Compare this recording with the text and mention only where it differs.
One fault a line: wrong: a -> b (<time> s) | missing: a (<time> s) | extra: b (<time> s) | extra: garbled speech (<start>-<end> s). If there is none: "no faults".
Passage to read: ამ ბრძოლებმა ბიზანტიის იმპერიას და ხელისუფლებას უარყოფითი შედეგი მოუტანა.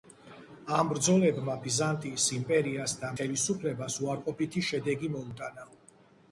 no faults